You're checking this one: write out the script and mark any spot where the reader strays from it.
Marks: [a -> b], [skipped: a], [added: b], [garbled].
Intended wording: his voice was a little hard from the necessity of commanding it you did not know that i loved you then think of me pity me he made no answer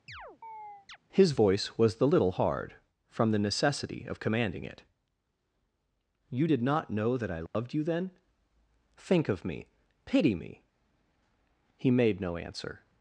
his voice was [a -> the] little hard from the necessity of commanding it you did not know that i loved you then think of me pity me he made no answer